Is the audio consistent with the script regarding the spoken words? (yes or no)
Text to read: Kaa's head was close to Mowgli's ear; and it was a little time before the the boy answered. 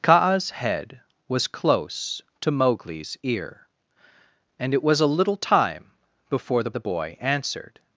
yes